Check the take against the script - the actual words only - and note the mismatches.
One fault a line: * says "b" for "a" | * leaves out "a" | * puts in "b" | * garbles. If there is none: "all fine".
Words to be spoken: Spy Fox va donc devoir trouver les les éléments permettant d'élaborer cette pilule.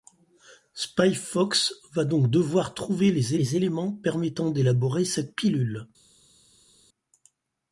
all fine